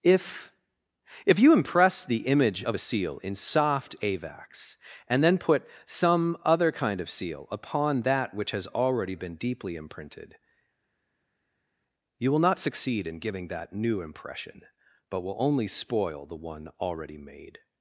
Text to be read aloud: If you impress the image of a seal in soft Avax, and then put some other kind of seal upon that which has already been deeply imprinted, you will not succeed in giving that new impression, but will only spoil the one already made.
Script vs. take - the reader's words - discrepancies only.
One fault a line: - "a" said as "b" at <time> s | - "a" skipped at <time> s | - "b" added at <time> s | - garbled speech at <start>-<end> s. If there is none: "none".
- "if" added at 1.2 s